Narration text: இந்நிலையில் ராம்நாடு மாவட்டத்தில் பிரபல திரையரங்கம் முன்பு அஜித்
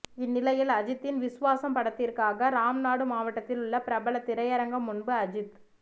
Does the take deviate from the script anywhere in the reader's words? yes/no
yes